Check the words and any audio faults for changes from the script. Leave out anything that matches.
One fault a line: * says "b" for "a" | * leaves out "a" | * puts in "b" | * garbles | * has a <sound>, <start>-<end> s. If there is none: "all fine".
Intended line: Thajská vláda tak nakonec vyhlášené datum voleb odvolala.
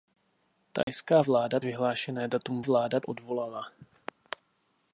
* has a dropout, 0.8-0.9 s
* leaves out "tak nakonec"
* says "vláda" for "voleb"